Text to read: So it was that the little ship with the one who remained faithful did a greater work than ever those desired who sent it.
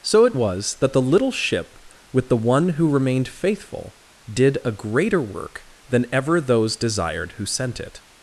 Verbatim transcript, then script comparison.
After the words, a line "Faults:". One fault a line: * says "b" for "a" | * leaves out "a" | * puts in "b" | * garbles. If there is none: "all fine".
So it was that the little ship with the one who remained faithful did a greater work than ever those desired who sent it.
Faults:
all fine